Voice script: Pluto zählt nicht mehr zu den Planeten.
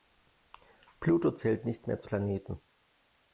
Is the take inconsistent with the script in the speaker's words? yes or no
yes